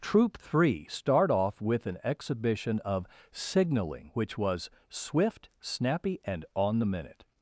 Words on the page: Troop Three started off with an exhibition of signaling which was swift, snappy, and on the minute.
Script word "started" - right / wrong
wrong